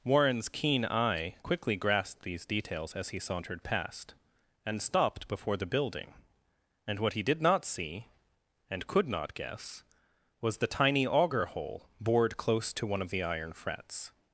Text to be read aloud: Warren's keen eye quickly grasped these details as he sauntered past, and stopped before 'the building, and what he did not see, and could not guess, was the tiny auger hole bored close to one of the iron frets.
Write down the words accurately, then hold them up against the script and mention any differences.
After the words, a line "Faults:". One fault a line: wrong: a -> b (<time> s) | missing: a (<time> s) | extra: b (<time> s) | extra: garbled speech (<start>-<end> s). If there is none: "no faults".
Warren's keen eye quickly grasped these details as he sauntered past, and stopped before 'the building, and what he did not see, and could not guess, was the tiny auger hole bored close to one of the iron frets.
Faults:
no faults